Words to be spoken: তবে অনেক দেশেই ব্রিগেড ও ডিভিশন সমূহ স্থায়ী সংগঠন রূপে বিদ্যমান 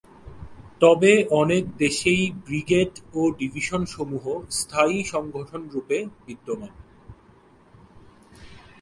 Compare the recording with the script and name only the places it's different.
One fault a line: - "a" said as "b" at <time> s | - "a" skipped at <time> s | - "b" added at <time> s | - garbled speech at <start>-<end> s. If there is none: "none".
none